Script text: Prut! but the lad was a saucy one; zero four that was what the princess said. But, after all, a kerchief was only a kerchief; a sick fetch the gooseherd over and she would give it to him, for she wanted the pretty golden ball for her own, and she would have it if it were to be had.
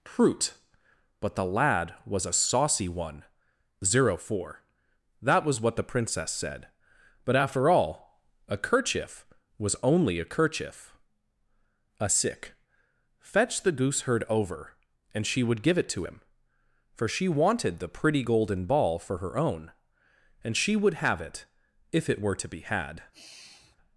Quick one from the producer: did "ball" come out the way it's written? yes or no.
yes